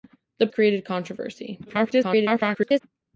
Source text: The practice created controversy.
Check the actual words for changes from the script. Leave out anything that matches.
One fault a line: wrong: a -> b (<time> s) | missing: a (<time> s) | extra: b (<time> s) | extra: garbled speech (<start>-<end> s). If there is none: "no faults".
missing: practice (0.5 s)
extra: garbled speech (1.7-2.8 s)